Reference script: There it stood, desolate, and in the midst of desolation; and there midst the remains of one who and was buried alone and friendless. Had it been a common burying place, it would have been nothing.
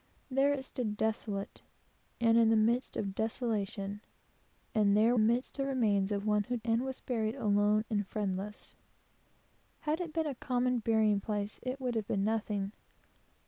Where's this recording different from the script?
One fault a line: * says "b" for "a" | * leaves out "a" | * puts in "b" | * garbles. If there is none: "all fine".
all fine